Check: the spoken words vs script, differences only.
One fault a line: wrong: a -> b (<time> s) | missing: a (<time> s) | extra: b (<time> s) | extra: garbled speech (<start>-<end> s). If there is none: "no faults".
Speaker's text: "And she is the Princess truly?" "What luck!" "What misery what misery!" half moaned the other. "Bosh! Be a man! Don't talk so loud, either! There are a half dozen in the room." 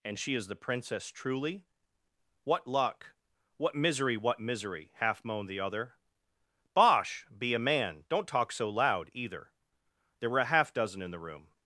wrong: are -> were (10.3 s)